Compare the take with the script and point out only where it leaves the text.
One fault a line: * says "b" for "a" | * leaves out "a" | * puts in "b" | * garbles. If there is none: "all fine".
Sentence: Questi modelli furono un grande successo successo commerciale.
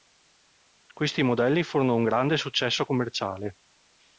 * leaves out "successo"